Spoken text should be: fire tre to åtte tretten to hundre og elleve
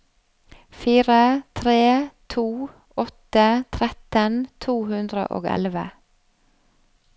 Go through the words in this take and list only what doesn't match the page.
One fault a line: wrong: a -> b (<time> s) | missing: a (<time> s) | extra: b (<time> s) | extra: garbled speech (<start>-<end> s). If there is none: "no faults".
no faults